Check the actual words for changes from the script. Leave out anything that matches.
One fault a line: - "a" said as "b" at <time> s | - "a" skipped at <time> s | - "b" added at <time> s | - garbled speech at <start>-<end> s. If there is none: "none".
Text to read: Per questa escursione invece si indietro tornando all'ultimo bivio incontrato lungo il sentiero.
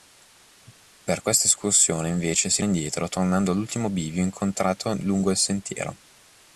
none